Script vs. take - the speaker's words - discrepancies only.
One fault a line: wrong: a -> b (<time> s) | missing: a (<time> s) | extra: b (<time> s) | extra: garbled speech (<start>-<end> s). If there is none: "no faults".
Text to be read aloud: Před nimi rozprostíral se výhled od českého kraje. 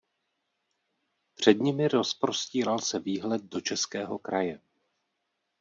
wrong: od -> do (3.4 s)